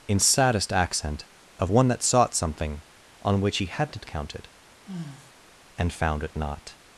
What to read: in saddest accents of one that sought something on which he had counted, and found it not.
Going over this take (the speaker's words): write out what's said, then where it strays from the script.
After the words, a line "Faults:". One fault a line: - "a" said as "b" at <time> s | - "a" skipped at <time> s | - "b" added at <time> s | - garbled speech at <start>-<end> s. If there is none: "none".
in saddest accent of one that sought something on which he hadn't counted, and found it not.
Faults:
- "accents" said as "accent" at 0.7 s
- "had" said as "hadn't" at 3.7 s